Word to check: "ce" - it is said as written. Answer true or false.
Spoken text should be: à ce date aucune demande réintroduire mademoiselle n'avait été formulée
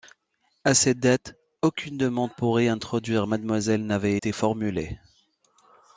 false